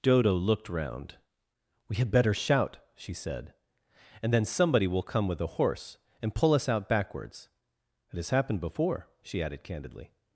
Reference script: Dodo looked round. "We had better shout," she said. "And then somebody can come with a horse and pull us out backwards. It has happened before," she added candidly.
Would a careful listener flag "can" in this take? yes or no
yes